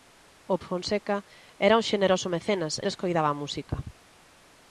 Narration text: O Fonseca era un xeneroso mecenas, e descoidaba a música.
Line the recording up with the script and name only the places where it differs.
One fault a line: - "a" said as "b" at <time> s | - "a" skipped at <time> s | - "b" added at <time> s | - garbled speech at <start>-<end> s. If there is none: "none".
none